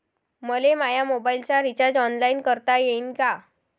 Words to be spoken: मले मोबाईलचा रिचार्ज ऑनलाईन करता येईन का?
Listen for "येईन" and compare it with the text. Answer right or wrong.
right